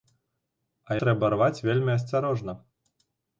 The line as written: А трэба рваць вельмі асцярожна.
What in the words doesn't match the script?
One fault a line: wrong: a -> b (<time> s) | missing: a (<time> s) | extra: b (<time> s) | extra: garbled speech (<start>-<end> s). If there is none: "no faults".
no faults